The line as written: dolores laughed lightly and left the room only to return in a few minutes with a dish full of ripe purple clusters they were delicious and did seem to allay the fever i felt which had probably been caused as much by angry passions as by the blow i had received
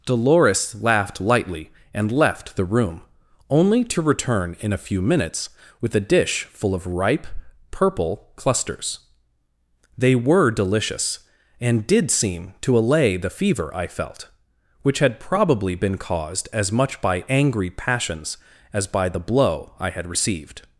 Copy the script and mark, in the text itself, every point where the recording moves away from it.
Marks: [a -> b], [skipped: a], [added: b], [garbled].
dolores laughed lightly and left the room only to return in a few minutes with a dish full of ripe purple clusters they were delicious and did seem to allay the fever i felt which had probably been caused as much by angry passions as by the blow i had received